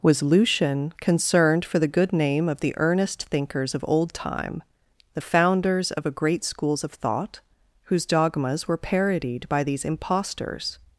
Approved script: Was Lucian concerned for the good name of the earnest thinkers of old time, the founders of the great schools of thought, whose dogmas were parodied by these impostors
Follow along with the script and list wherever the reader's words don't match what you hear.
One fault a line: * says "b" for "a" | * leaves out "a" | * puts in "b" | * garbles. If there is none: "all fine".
* says "a" for "the"